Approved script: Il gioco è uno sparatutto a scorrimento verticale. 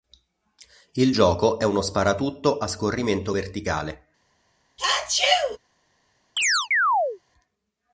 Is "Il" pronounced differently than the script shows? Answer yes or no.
no